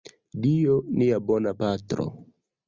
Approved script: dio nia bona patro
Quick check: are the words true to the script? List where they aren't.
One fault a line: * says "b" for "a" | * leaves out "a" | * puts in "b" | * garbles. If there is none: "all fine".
all fine